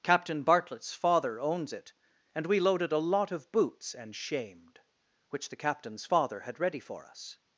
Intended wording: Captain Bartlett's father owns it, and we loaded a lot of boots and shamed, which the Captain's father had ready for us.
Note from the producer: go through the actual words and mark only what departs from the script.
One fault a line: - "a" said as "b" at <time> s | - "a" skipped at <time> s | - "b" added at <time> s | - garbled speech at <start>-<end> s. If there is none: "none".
none